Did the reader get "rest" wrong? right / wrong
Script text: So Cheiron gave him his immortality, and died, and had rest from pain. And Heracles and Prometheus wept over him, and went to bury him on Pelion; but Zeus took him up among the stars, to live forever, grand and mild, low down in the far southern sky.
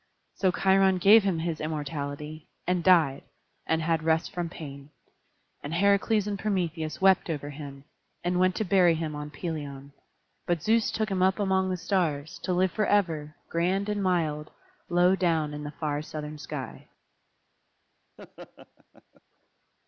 right